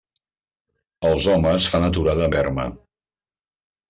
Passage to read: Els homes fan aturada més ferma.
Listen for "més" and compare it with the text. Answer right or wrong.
wrong